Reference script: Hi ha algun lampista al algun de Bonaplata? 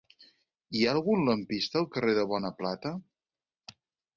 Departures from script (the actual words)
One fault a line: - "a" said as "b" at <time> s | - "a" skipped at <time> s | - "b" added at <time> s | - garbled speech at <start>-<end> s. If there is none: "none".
- "algun" said as "carrer" at 2.0 s